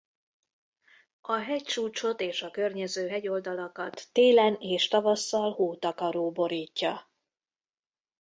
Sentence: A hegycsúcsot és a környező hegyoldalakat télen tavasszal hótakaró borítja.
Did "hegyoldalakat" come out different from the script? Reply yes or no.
no